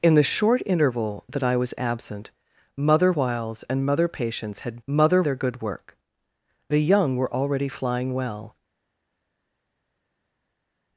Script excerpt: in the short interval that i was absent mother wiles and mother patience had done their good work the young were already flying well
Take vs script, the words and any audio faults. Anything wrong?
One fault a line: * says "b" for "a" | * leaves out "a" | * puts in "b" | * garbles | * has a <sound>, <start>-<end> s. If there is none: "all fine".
* says "mother" for "done"